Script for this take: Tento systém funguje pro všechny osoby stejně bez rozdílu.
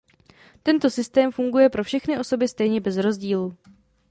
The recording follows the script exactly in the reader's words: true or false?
true